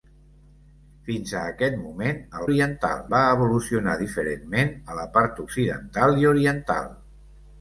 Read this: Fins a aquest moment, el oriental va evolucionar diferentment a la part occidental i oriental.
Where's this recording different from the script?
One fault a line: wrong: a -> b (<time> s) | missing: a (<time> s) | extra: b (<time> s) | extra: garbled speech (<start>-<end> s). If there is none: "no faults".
no faults